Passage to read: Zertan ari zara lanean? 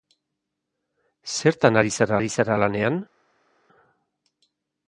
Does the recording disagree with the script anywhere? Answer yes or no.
yes